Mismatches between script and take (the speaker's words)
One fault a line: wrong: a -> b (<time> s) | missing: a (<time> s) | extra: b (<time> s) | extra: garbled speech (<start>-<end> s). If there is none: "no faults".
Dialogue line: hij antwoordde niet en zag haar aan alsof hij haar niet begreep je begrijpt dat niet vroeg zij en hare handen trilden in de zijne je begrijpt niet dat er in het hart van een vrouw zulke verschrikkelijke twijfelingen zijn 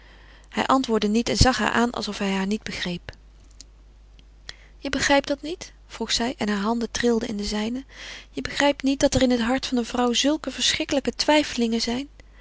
no faults